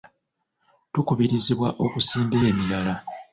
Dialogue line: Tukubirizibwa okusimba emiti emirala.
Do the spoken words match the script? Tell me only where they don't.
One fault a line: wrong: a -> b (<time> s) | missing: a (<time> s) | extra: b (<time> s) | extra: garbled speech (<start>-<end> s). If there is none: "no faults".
missing: emiti (2.4 s)